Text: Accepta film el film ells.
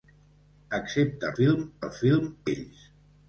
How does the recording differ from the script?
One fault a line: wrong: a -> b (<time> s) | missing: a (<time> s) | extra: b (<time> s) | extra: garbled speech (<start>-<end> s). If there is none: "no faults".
no faults